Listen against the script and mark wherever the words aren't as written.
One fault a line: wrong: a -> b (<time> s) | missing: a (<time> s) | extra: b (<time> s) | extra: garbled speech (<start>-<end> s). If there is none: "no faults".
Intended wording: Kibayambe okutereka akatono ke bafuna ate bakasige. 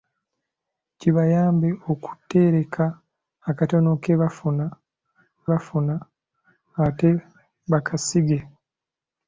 extra: bafuna (5.5 s)